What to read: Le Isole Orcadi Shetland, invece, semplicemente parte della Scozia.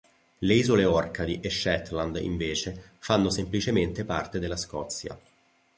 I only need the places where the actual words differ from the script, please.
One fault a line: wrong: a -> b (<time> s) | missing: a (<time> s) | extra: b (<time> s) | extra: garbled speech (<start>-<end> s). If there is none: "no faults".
extra: e (1.4 s)
extra: fanno (3.0 s)